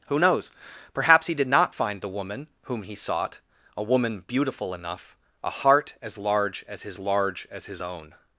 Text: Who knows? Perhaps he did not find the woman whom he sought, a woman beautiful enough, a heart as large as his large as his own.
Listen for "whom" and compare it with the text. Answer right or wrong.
right